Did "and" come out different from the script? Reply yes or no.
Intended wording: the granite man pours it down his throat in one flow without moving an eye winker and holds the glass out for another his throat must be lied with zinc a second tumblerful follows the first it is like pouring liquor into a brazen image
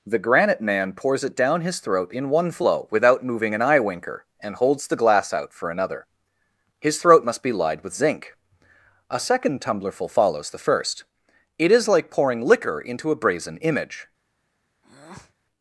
no